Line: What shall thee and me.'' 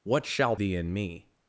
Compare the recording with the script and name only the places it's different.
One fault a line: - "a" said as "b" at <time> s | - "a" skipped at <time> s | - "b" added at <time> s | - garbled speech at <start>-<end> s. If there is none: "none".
none